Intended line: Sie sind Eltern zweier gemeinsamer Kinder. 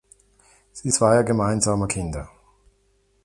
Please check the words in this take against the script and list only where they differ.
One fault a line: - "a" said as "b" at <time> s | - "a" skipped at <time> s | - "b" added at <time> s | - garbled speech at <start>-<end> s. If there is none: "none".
- "sind Eltern" skipped at 0.9 s